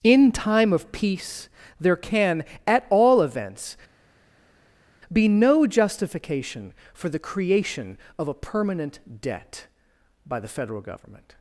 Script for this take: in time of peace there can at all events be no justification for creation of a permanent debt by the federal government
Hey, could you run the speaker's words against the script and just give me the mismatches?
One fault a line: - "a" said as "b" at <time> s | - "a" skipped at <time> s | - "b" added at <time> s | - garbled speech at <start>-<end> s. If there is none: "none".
- "the" added at 7.1 s